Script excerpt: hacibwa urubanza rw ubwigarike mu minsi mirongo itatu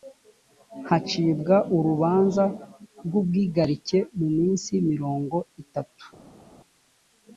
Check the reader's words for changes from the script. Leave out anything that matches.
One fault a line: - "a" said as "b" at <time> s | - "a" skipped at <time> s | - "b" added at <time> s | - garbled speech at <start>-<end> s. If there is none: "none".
none